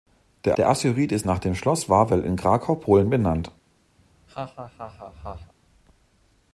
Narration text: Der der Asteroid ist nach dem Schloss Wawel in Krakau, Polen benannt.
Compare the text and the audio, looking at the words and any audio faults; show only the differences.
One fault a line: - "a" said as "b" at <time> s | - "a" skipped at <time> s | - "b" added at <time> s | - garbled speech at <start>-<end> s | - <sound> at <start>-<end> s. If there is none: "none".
- laugh at 4.0-5.5 s